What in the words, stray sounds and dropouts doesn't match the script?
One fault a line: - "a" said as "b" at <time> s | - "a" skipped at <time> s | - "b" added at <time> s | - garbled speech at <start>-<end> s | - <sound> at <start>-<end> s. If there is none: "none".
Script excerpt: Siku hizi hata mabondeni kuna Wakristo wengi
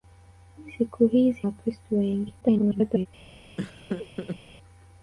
- "hata mabondeni kuna" skipped at 1.4 s
- garbled speech at 2.4-3.1 s
- laugh at 3.6-4.4 s